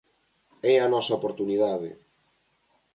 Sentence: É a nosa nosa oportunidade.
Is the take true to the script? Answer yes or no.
no